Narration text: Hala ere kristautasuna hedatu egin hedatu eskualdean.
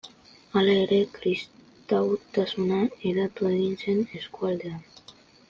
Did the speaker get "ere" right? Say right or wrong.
right